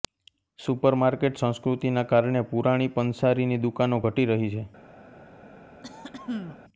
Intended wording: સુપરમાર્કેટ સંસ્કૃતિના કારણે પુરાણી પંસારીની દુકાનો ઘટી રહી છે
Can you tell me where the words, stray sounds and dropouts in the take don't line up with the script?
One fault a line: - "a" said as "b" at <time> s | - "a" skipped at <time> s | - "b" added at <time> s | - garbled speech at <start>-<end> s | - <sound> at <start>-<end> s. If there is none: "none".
- throat clearing at 5.8-6.6 s